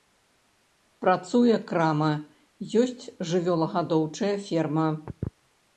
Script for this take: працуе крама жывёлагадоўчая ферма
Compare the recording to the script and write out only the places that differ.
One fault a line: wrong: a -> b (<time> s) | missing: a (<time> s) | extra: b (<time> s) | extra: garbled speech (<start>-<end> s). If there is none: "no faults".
extra: ёсць (2.8 s)